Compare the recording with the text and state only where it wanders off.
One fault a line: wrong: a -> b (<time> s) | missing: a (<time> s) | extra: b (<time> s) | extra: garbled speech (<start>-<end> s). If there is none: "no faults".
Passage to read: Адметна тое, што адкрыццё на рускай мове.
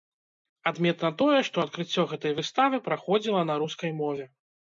extra: гэтай выставы праходзіла (2.1 s)